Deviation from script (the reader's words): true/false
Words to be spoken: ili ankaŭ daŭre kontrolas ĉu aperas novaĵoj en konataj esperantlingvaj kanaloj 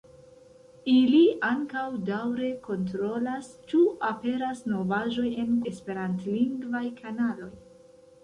true